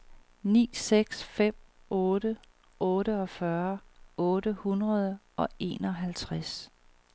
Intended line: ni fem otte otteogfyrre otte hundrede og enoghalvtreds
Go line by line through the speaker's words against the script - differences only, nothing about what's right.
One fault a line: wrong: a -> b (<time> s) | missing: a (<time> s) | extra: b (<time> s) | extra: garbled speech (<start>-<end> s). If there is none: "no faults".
extra: seks (0.7 s)